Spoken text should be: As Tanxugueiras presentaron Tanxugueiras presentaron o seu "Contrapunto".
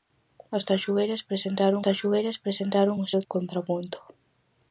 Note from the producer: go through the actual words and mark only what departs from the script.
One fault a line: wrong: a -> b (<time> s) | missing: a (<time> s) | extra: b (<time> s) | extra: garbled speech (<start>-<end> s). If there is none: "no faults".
no faults